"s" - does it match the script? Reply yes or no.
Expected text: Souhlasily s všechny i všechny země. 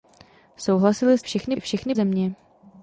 yes